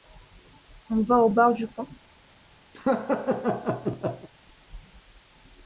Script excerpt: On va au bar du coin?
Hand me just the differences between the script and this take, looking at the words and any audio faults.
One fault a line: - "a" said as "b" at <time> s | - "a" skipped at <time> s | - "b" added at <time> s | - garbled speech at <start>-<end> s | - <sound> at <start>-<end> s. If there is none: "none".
- laugh at 2.7-4.3 s